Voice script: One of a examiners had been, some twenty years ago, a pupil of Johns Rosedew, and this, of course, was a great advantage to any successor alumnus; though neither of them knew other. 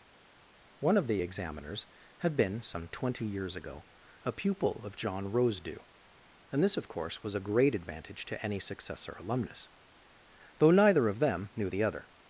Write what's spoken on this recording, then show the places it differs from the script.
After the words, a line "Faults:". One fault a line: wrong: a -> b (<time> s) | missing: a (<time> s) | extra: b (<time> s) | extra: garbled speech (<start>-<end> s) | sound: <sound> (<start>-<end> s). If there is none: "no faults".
One of the examiners had been, some twenty years ago, a pupil of John Rosedew, and this, of course, was a great advantage to any successor alumnus; though neither of them knew the other.
Faults:
wrong: a -> the (1.1 s)
wrong: Johns -> John (5.0 s)
extra: the (11.7 s)